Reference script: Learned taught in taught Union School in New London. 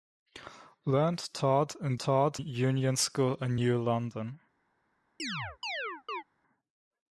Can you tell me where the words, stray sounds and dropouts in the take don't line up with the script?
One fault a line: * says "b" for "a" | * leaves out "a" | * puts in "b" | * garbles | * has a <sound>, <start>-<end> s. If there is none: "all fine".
* has a chirp, 5.2-6.2 s